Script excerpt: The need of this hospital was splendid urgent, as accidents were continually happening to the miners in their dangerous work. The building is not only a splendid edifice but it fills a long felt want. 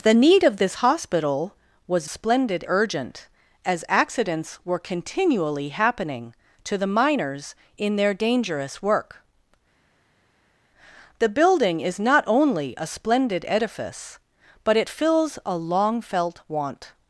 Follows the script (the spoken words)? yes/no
yes